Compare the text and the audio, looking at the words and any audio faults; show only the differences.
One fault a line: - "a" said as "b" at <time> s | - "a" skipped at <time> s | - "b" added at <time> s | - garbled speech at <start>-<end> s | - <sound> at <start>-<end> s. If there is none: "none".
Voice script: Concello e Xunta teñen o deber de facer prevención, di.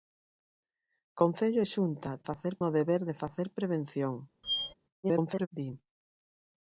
- "teñen" said as "facer" at 2.3 s
- squeak at 4.4-4.7 s
- garbled speech at 5.0-5.5 s